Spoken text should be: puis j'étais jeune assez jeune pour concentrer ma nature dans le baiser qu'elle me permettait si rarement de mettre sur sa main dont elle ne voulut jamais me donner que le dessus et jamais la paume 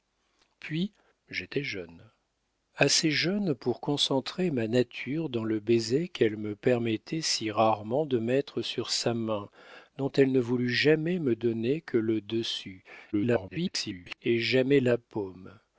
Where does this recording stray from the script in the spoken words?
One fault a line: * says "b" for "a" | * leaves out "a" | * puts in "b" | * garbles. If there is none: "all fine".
* garbles